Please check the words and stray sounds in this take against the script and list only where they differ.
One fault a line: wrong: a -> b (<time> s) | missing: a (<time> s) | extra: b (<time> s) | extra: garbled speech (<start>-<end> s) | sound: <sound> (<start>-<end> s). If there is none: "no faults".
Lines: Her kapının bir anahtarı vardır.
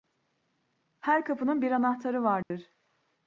sound: dropout (2.4-2.5 s)